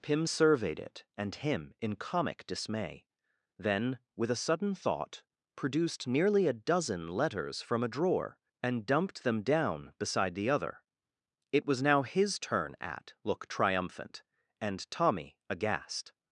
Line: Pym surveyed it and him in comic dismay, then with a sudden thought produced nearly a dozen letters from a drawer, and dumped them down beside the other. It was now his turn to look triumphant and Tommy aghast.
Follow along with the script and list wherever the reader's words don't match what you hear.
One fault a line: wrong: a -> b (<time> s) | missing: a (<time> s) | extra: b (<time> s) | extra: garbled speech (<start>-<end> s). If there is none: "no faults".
wrong: to -> at (12.8 s)